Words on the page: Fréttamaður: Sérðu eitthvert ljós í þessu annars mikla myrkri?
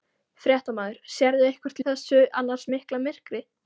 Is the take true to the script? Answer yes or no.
no